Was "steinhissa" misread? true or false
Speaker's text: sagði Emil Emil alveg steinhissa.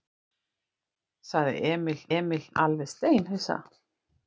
false